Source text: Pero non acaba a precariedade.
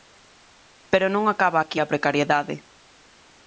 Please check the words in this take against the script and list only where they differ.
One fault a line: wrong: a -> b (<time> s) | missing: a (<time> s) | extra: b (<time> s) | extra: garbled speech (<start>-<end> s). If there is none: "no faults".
extra: aquí (1.6 s)